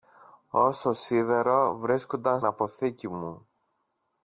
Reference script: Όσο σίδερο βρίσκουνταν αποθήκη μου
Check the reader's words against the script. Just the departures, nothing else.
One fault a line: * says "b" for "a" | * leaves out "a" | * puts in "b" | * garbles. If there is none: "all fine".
all fine